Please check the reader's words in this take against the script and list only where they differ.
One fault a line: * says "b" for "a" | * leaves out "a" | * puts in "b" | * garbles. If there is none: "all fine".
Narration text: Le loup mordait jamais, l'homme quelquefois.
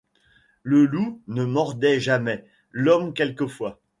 * puts in "ne"